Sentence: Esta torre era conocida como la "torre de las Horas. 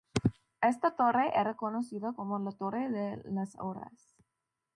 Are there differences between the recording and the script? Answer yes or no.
no